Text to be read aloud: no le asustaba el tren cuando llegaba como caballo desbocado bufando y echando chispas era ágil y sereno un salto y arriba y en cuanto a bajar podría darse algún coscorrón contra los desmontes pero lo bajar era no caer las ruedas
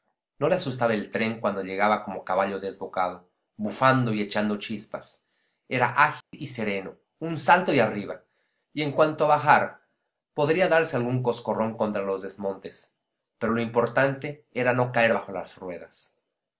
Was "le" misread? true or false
false